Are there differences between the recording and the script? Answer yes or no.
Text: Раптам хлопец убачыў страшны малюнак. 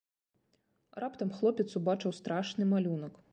no